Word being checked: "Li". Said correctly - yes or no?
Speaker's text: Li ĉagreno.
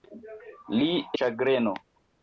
yes